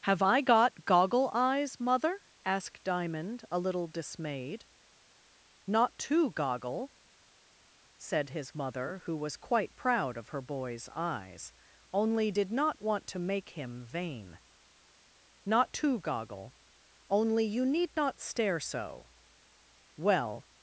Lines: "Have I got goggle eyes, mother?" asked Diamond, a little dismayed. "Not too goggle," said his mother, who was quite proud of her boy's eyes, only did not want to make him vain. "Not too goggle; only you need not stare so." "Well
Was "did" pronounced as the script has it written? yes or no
yes